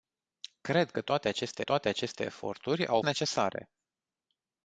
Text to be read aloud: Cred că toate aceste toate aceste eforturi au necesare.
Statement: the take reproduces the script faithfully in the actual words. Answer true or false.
true